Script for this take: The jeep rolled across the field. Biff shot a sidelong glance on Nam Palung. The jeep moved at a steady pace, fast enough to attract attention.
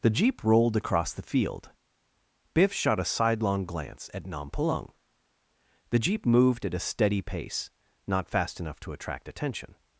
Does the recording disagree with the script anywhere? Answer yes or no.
yes